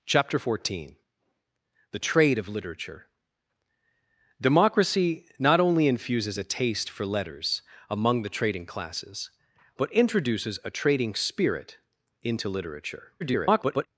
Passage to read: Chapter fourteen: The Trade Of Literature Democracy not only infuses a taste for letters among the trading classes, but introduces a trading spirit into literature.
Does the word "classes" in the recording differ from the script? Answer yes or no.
no